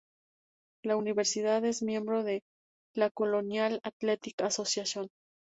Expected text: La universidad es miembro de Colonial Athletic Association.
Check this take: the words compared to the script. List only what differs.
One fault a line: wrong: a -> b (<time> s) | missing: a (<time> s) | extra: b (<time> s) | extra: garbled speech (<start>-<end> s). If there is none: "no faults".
extra: la (2.9 s)